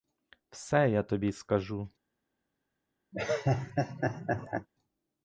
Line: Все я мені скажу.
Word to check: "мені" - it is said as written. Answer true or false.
false